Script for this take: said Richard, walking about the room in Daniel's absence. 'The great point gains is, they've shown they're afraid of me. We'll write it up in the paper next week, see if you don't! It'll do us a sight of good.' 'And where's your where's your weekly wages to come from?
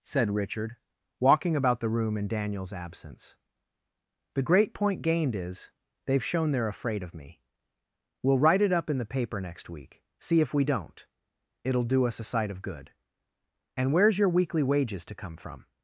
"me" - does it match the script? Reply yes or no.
yes